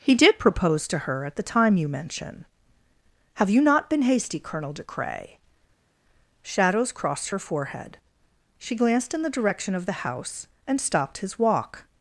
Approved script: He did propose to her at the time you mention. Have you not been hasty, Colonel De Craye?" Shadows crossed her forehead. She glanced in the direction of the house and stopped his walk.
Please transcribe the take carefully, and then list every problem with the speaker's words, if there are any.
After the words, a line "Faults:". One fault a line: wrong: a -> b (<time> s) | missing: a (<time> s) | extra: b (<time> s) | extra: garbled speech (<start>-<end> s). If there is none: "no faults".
He did propose to her at the time you mention. Have you not been hasty, Colonel De Craye?" Shadows crossed her forehead. She glanced in the direction of the house and stopped his walk.
Faults:
no faults